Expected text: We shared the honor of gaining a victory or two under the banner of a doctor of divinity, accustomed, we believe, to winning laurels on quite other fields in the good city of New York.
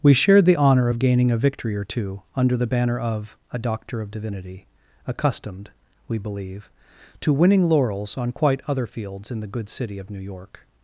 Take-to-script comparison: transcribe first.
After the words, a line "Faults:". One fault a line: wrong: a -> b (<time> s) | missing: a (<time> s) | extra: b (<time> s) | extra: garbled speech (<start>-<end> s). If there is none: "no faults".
We shared the honor of gaining a victory or two under the banner of a doctor of divinity, accustomed, we believe, to winning laurels on quite other fields in the good city of New York.
Faults:
no faults